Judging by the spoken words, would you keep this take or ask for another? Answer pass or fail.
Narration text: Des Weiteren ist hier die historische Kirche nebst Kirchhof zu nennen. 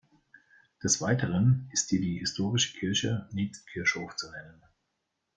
pass